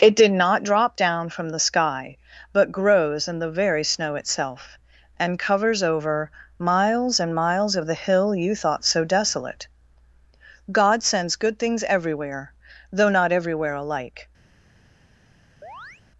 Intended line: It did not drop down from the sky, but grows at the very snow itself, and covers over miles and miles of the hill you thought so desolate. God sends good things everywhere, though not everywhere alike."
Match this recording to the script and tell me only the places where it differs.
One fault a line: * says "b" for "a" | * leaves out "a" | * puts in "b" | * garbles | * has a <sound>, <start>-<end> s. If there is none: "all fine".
* says "in" for "at"
* has a chirp, 15.6-16.0 s